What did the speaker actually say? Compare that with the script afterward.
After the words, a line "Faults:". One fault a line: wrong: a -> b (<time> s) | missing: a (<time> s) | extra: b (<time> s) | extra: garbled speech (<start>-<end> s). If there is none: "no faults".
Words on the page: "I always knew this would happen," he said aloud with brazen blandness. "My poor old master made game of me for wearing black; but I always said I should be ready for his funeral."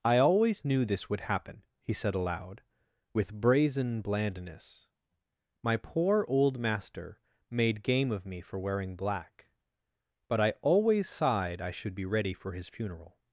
"I always knew this would happen," he said aloud with brazen blandness. "My poor old master made game of me for wearing black; but I always sighed I should be ready for his funeral."
Faults:
wrong: said -> sighed (11.1 s)